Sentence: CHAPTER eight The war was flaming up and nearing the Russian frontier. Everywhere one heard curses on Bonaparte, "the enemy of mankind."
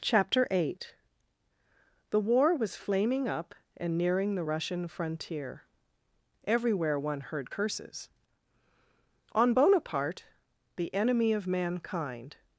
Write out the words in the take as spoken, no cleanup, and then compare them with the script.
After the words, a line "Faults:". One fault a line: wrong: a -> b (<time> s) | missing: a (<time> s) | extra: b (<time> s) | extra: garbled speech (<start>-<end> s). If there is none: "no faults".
CHAPTER eight The war was flaming up and nearing the Russian frontier. Everywhere one heard curses on Bonaparte, "the enemy of mankind."
Faults:
no faults